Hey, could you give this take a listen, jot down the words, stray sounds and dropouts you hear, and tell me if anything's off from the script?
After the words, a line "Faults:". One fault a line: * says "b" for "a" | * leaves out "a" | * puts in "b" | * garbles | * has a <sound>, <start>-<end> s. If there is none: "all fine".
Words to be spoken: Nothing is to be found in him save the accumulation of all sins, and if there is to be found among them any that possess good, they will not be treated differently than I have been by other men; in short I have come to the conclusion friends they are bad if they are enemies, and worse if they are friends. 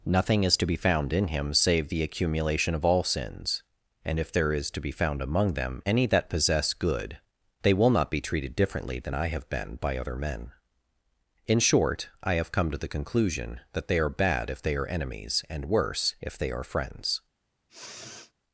Nothing is to be found in him save the accumulation of all sins, and if there is to be found among them any that possess good, they will not be treated differently than I have been by other men; in short I have come to the conclusion that they are bad if they are enemies, and worse if they are friends.
Faults:
* says "that" for "friends"
* has a sniff, 17.7-18.3 s